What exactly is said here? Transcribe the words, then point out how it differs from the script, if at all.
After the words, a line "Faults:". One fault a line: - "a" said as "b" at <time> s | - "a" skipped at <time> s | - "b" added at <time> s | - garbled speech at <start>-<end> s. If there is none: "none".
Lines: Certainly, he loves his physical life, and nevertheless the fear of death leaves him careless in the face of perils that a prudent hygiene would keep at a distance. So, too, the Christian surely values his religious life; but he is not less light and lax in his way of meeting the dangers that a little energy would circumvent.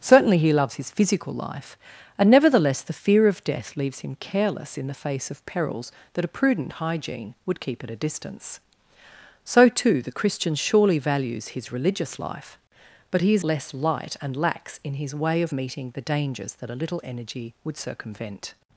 Certainly, he loves his physical life, and nevertheless the fear of death leaves him careless in the face of perils that a prudent hygiene would keep at a distance. So, too, the Christian surely values his religious life; but he is less light and lax in his way of meeting the dangers that a little energy would circumvent.
Faults:
- "not" skipped at 13.4 s